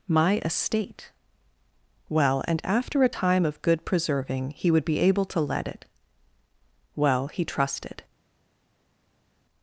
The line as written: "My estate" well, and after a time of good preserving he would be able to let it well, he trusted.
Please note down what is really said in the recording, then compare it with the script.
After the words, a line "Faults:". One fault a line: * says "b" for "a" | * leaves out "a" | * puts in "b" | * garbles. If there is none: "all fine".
"My estate" well, and after a time of good preserving he would be able to let it well, he trusted.
Faults:
all fine